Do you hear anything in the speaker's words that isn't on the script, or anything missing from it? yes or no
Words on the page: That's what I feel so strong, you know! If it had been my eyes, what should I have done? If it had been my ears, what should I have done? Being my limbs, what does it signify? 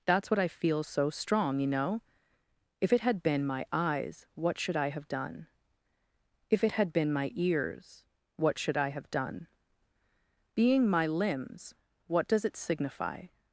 no